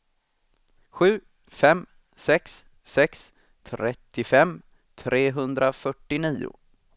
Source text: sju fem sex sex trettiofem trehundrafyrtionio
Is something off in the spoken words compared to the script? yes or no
no